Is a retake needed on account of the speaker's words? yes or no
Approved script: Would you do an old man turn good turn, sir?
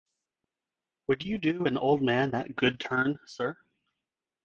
yes